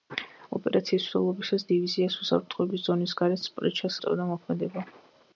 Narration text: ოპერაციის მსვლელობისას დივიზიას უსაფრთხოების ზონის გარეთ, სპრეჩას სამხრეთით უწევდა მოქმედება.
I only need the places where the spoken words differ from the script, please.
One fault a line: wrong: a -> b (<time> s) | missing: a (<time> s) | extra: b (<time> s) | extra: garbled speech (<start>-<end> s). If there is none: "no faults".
missing: სამხრეთით (4.0 s)